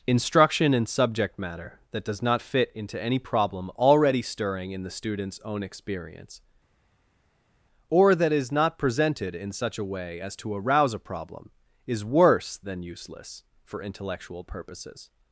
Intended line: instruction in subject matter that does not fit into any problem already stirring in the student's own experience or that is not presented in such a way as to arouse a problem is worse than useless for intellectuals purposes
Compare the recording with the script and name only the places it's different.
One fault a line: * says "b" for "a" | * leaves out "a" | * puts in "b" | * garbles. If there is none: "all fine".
* says "intellectual" for "intellectuals"